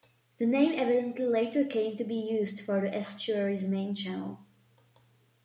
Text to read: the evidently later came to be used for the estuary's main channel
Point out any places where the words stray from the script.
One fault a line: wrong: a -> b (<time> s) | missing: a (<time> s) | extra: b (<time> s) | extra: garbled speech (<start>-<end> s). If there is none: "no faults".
extra: name (0.5 s)